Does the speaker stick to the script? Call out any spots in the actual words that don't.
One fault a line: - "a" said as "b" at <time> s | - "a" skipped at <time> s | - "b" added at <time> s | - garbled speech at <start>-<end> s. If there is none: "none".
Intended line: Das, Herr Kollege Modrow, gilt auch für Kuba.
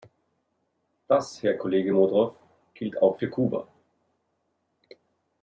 none